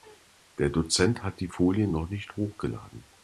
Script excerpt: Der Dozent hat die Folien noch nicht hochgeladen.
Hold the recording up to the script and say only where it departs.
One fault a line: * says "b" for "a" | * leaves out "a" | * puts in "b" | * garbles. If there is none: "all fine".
all fine